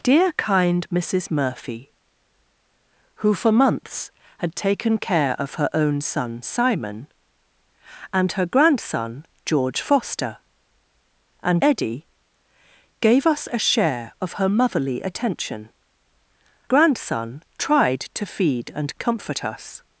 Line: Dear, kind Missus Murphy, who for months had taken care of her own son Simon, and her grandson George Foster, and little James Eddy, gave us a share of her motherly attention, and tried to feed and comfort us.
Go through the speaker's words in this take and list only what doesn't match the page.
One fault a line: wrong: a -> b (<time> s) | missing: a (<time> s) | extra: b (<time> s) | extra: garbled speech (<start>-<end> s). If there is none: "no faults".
missing: little James (11.6 s)
wrong: and -> grandson (16.6 s)